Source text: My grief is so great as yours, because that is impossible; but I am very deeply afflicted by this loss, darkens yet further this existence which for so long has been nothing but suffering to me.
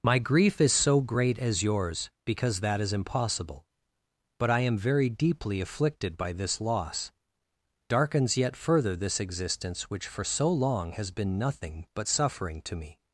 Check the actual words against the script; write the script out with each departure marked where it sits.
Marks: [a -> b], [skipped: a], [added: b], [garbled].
My grief is so great as yours, because that is impossible; but I am very deeply afflicted by this loss, darkens yet further this existence which for so long has been nothing but suffering to me.